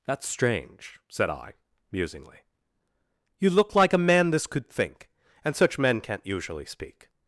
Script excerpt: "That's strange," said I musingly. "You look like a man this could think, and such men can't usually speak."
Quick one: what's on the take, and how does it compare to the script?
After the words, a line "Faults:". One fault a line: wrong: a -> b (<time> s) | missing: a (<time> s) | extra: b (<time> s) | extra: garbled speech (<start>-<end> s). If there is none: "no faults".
"That's strange," said I musingly. "You look like a man this could think, and such men can't usually speak."
Faults:
no faults